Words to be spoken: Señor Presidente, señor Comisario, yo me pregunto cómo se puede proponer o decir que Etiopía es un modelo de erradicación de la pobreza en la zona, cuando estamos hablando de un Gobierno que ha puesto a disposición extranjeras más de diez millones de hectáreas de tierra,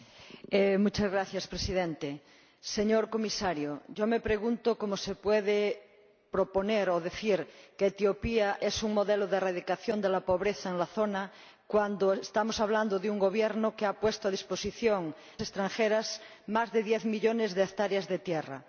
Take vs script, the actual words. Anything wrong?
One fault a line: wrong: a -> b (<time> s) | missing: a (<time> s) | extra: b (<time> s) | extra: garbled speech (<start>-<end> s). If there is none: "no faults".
no faults